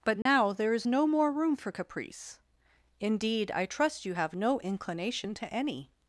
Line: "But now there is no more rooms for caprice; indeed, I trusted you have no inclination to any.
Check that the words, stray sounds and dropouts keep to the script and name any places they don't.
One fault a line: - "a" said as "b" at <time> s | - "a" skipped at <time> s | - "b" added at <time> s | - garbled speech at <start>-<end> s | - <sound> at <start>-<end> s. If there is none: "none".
- dropout at 0.2-0.3 s
- "rooms" said as "room" at 1.3 s
- "trusted" said as "trust" at 3.7 s